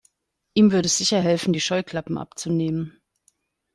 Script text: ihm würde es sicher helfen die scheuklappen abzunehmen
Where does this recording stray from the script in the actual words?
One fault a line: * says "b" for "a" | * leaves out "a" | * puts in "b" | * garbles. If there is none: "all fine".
all fine